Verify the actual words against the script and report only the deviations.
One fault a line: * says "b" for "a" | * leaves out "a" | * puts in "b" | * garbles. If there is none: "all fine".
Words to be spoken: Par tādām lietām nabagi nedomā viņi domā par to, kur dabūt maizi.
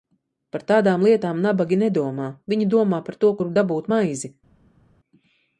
all fine